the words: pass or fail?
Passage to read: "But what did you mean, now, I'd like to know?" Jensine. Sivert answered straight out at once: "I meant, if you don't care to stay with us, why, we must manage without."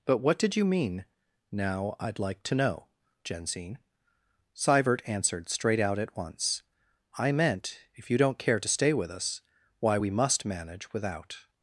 pass